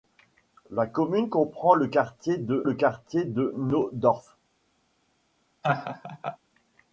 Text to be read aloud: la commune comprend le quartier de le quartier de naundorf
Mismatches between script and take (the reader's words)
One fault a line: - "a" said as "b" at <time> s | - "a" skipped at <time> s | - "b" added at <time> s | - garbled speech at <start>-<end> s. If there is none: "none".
none